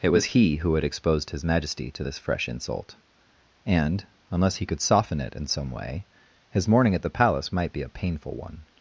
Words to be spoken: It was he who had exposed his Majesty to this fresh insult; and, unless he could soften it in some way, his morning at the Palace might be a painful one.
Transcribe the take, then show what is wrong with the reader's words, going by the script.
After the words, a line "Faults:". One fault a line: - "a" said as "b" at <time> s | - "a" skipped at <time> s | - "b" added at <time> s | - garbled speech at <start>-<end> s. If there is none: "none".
It was he who had exposed his Majesty to this fresh insult; and, unless he could soften it in some way, his morning at the Palace might be a painful one.
Faults:
none